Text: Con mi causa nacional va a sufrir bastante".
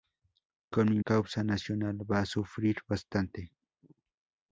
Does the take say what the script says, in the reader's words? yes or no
yes